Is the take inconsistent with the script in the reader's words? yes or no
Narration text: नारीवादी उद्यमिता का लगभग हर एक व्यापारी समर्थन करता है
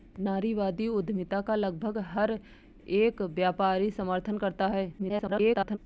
yes